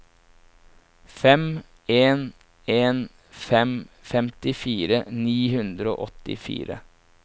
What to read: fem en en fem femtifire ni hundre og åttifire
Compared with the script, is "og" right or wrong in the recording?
right